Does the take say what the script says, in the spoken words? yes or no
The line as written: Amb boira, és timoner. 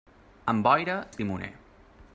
yes